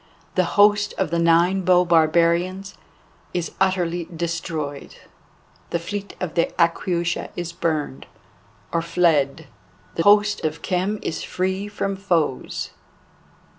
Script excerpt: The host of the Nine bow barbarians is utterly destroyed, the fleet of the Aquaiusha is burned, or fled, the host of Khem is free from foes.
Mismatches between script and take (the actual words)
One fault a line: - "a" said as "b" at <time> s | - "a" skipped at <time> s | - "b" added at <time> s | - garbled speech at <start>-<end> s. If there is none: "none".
none